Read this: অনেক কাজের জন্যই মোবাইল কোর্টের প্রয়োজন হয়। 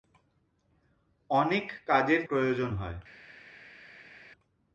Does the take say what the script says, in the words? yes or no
no